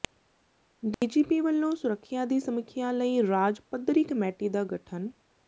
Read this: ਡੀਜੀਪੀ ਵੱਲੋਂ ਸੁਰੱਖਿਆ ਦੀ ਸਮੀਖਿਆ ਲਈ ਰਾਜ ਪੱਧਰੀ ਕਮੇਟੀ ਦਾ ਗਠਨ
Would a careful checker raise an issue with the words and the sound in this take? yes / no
yes